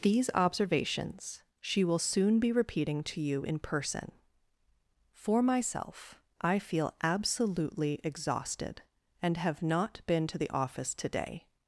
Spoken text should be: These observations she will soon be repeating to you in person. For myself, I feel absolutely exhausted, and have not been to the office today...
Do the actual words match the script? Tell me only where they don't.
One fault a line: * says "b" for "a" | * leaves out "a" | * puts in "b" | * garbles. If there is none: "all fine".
all fine